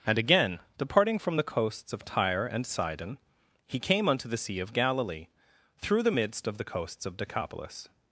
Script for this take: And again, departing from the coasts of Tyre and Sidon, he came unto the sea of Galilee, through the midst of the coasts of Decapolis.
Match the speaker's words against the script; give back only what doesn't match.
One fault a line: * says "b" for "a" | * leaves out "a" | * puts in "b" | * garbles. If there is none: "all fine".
all fine